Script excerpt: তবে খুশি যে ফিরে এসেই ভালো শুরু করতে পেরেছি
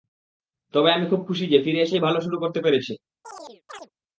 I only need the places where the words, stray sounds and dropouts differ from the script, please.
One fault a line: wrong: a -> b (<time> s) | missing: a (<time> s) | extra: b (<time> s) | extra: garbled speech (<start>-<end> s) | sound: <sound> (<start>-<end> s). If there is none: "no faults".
extra: আমি খুব (0.9 s)
sound: chirp (3.2-3.9 s)